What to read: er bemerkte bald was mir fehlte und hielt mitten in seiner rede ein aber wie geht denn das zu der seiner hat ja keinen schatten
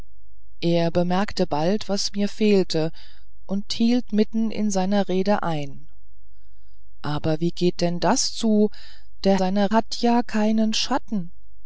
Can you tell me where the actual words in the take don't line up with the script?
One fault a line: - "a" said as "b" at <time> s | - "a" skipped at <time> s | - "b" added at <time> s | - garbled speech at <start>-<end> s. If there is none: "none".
none